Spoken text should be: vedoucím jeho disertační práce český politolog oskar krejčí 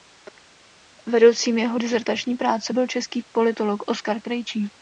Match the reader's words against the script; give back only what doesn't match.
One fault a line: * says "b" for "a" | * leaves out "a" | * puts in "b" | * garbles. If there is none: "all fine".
* puts in "byl"